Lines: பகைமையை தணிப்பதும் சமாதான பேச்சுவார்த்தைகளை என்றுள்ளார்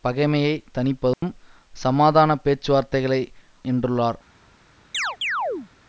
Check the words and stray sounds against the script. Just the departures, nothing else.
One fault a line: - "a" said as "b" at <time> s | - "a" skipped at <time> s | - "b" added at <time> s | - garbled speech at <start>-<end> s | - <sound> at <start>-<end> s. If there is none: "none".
- dropout at 1.1-1.2 s
- chirp at 4.9-5.7 s